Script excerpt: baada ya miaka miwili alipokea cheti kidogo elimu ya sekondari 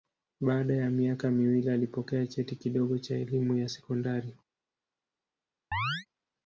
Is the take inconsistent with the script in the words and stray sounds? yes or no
yes